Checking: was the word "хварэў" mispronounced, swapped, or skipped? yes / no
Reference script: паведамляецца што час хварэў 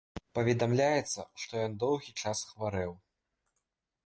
no